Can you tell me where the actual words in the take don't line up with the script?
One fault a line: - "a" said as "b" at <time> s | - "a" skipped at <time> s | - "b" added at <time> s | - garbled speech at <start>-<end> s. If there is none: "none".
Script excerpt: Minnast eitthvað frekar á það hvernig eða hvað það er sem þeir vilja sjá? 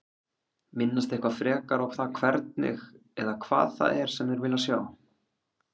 none